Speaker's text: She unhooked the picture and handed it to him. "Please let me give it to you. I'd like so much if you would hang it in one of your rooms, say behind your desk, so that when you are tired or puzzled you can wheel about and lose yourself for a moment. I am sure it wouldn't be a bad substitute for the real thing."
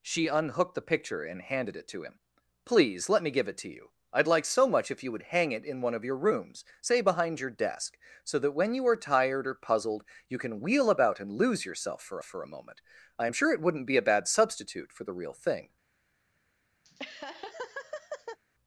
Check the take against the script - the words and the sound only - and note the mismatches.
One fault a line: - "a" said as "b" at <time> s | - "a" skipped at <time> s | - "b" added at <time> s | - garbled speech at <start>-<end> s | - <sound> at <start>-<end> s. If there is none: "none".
- "for" added at 12.2 s
- laugh at 16.8-18.4 s